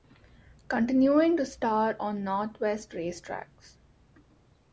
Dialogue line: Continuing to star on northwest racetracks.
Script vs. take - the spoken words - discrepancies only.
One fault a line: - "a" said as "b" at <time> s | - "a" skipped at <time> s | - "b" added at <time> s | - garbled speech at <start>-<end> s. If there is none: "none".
none